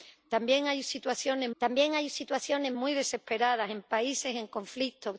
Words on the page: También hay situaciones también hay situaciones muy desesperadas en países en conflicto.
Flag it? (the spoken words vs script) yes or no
no